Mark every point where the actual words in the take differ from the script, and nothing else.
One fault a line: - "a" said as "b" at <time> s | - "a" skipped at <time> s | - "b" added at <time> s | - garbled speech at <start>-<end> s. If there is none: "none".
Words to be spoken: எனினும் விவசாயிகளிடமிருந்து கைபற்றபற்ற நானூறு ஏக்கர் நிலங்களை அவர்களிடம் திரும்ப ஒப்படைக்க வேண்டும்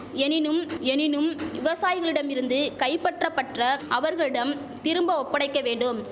- "எனினும்" added at 0.8 s
- "நானூறு ஏக்கர் நிலங்களை" skipped at 3.6 s